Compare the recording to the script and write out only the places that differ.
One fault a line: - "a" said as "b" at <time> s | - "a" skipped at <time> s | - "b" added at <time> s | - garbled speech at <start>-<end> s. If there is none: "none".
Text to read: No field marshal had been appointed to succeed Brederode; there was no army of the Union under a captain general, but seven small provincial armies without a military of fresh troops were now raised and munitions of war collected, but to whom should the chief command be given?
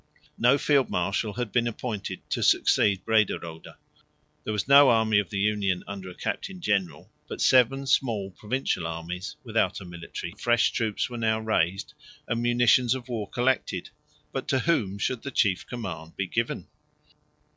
none